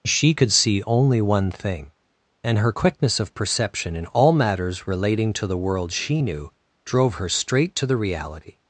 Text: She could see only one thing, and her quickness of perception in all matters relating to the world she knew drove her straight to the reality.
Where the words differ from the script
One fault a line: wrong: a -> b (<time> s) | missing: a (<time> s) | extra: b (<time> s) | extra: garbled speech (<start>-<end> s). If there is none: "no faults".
no faults